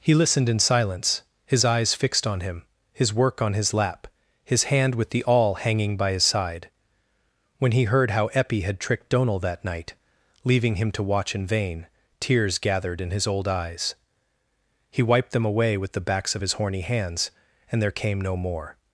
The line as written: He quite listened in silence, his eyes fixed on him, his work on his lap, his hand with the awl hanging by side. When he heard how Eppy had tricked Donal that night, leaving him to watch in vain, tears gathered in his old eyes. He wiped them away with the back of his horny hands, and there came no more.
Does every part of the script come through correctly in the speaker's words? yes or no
no